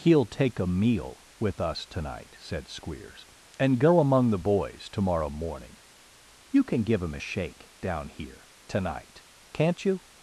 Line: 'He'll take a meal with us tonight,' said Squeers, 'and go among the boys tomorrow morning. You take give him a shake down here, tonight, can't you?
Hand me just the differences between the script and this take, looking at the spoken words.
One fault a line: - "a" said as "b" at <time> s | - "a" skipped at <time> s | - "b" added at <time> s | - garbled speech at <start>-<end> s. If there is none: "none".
- "take" said as "can" at 6.6 s